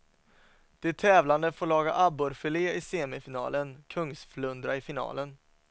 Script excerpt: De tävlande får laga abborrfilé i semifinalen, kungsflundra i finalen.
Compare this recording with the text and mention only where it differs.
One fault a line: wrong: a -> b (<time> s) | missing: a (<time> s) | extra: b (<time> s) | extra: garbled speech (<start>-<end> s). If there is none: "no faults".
no faults